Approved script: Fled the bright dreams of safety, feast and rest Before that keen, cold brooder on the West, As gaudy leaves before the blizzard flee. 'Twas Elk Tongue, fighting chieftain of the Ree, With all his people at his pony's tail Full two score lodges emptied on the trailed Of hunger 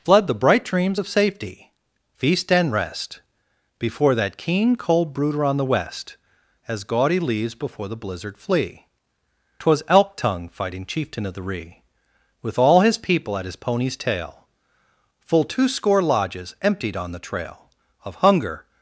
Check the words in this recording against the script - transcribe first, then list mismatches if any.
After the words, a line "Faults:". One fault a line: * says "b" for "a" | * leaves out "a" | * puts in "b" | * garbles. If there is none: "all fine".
Fled the bright dreams of safety, feast and rest Before that keen, cold brooder on the West, As gaudy leaves before the blizzard flee. 'Twas Elk Tongue, fighting chieftain of the Ree, With all his people at his pony's tail Full two score lodges emptied on the trail Of hunger
Faults:
* says "trail" for "trailed"